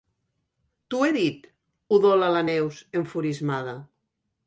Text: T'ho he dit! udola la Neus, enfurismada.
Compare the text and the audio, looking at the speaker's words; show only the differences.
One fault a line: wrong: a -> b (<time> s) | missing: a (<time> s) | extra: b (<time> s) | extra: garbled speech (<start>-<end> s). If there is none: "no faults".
no faults